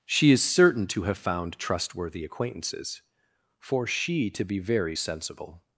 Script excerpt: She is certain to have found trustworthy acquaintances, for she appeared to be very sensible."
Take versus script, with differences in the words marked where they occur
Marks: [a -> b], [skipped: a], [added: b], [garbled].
She is certain to have found trustworthy acquaintances, for she [skipped: appeared] to be very sensible."